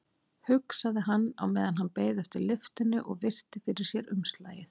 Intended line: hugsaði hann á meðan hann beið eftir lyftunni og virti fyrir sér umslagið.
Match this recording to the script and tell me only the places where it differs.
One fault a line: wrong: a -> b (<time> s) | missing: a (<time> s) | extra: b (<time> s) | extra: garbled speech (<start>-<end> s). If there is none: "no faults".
no faults